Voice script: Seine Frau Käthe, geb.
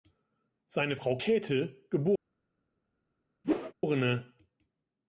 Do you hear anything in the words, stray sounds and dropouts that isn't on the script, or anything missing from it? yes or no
yes